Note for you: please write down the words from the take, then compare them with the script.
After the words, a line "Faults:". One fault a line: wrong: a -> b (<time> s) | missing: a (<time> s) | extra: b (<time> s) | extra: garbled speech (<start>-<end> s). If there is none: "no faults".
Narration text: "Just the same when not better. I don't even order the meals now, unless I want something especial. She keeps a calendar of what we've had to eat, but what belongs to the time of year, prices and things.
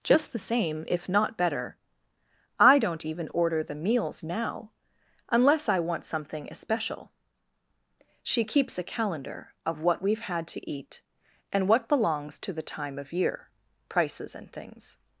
"Just the same if not better. I don't even order the meals now, unless I want something especial. She keeps a calendar of what we've had to eat, and what belongs to the time of year, prices and things.
Faults:
wrong: when -> if (0.9 s)
wrong: but -> and (11.5 s)